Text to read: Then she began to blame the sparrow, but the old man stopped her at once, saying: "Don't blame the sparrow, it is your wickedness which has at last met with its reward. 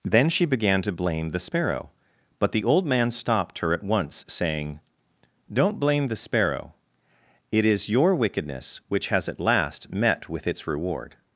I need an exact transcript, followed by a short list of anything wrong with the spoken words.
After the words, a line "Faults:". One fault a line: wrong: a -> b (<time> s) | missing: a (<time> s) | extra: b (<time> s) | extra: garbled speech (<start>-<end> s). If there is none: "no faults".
Then she began to blame the sparrow, but the old man stopped her at once, saying: "Don't blame the sparrow, it is your wickedness which has at last met with its reward.
Faults:
no faults